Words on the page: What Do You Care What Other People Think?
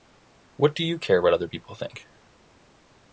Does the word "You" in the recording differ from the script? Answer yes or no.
no